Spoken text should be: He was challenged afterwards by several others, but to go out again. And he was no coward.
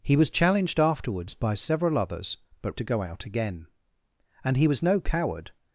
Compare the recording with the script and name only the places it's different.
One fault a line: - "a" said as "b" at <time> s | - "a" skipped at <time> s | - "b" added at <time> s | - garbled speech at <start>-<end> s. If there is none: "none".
none